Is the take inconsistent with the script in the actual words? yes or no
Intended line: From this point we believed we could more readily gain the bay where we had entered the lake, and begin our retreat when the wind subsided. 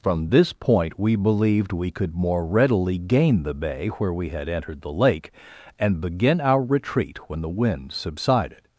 no